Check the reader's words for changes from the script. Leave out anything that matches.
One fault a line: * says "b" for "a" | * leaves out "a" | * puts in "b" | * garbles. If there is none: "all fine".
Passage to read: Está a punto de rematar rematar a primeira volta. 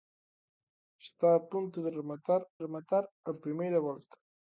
all fine